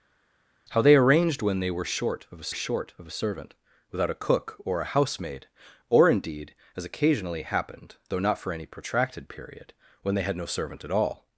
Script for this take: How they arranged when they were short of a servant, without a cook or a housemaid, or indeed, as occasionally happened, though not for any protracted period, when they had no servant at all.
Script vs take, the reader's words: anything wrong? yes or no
yes